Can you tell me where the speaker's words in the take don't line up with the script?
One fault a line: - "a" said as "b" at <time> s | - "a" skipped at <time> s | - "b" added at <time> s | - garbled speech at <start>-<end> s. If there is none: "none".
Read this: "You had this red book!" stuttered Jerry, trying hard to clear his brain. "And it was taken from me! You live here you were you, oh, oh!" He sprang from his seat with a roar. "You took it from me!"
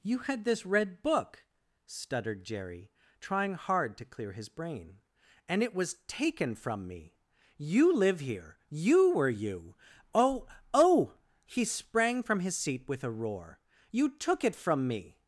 none